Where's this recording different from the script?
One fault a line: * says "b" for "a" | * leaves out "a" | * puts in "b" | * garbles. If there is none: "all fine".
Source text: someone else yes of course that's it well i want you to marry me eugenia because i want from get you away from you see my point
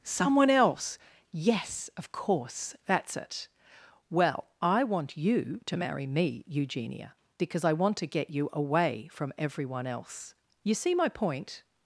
* says "to" for "from"
* puts in "everyone else"